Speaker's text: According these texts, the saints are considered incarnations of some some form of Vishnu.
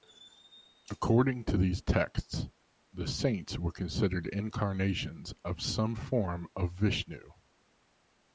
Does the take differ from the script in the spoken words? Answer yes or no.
yes